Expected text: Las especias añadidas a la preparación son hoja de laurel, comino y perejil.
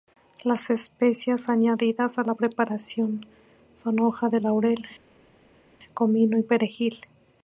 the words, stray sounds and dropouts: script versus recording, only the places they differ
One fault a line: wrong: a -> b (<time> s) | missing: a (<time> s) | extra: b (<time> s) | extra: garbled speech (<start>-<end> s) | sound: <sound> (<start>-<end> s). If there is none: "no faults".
no faults